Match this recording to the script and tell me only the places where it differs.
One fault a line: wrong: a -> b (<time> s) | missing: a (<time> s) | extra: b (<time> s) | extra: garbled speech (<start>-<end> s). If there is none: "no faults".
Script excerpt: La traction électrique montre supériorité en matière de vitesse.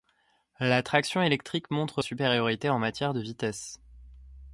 no faults